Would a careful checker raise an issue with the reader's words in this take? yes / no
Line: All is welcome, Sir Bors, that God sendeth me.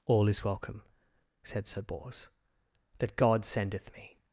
yes